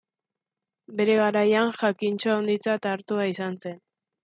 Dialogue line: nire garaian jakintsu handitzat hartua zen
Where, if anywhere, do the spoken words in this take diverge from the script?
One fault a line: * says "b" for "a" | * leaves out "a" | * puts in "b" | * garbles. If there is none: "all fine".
* says "bere" for "nire"
* puts in "izan"